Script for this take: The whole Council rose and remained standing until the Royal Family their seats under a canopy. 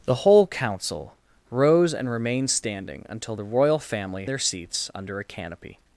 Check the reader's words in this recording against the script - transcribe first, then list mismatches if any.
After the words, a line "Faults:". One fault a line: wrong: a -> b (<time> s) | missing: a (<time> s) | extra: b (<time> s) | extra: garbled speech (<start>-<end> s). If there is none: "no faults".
The whole Council rose and remained standing until the Royal Family their seats under a canopy.
Faults:
no faults